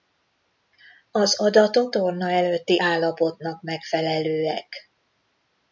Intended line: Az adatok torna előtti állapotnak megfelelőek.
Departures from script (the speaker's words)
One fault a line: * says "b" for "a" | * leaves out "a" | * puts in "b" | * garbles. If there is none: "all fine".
all fine